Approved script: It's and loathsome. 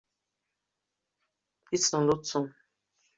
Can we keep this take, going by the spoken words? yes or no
yes